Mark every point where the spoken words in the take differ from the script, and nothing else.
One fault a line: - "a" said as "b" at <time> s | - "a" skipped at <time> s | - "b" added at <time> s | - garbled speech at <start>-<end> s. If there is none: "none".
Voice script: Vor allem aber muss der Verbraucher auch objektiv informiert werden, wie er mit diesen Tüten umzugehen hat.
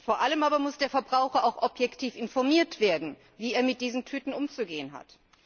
none